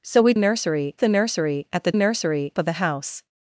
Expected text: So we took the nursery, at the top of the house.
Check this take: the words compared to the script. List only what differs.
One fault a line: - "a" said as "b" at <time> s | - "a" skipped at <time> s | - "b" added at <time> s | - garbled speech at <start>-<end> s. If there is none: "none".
- "took" said as "nursery" at 0.4 s
- "top" said as "nursery" at 1.9 s